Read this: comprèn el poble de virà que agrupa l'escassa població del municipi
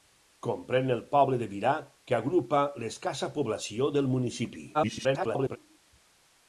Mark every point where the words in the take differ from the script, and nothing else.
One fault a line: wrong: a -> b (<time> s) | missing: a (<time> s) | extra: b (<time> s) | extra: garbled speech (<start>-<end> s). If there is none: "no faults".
extra: garbled speech (4.7-5.6 s)